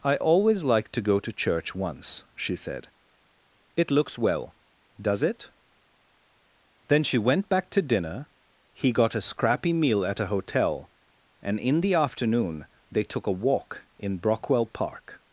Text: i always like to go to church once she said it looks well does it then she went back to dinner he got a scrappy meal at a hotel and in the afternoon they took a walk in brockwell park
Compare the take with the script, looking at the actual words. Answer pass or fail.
pass